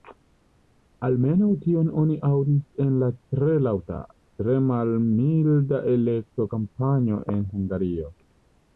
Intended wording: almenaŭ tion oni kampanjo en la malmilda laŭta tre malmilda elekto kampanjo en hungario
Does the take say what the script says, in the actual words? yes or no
no